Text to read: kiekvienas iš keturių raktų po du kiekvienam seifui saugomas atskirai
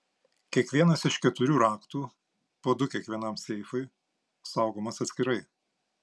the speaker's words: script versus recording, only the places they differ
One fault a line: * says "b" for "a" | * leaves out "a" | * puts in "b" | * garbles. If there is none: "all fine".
all fine